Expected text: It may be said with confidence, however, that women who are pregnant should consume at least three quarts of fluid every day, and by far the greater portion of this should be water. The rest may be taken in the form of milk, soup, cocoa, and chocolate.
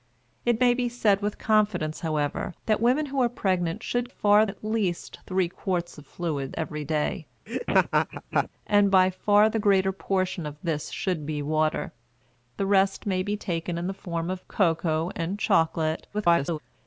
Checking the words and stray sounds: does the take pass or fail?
fail